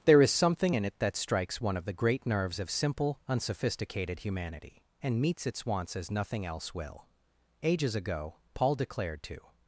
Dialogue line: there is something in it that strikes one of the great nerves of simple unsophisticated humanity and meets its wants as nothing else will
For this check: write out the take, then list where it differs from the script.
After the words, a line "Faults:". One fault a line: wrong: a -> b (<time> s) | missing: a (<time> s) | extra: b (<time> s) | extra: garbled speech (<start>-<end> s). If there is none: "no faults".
there is something in it that strikes one of the great nerves of simple unsophisticated humanity and meets its wants as nothing else will ages ago paul declared to
Faults:
extra: ages ago paul declared to (7.6 s)